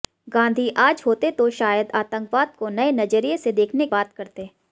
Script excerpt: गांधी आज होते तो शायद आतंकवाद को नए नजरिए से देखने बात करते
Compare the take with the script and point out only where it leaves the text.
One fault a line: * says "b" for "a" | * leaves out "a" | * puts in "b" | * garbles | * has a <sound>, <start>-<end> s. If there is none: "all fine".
all fine